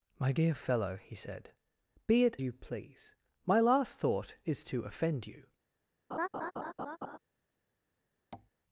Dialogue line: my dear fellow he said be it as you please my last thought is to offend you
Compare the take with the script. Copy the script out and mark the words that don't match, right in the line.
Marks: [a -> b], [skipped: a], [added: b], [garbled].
my dear fellow he said be it [skipped: as] you please my last thought is to offend you